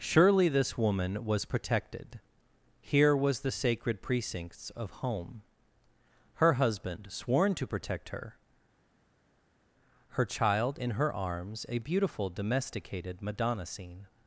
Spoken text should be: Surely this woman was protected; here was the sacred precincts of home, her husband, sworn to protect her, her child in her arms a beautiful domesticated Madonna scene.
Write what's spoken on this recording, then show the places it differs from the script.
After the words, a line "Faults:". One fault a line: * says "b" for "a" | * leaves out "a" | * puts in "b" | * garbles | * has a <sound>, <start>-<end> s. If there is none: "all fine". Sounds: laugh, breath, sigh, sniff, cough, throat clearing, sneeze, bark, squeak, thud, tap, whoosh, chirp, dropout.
Surely this woman was protected; here was the sacred precincts of home, her husband, sworn to protect her, her child in her arms a beautiful domesticated Madonna scene.
Faults:
all fine